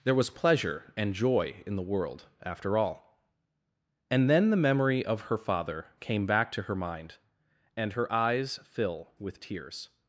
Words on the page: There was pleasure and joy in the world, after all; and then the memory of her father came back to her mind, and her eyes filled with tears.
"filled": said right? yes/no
no